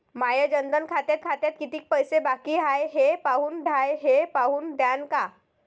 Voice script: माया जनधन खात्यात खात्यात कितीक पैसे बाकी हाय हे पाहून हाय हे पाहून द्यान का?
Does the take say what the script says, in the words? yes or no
yes